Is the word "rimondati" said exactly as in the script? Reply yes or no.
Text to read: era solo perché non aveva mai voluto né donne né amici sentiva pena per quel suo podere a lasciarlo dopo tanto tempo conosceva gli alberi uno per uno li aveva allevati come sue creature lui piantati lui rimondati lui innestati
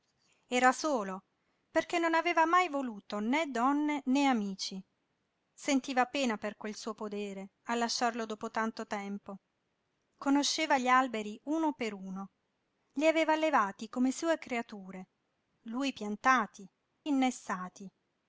no